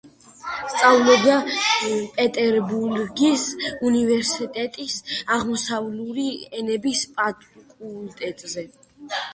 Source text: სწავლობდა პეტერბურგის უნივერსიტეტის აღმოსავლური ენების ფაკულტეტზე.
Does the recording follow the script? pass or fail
pass